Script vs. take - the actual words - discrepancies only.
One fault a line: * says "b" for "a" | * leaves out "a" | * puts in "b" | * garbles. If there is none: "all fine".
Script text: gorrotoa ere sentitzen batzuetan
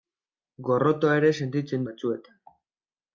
all fine